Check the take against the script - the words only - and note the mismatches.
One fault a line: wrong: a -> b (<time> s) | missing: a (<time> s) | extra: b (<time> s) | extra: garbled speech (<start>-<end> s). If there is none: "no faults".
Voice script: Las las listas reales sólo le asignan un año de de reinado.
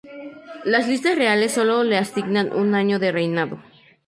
missing: las (0.9 s)
missing: de (3.1 s)